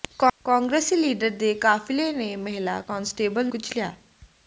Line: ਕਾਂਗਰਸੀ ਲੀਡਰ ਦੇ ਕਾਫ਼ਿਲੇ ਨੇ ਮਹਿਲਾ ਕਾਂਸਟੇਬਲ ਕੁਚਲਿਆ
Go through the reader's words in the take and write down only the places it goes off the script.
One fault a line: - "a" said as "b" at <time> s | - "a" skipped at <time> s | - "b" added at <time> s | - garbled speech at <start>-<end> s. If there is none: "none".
none